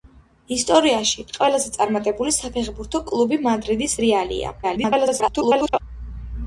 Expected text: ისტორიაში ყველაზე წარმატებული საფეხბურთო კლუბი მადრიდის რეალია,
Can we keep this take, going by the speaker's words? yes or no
no